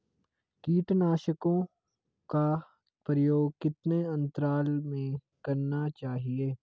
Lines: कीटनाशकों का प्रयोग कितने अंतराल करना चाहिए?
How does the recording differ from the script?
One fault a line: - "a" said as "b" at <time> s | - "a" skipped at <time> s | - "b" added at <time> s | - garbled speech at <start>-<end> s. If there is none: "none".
- "में" added at 4.8 s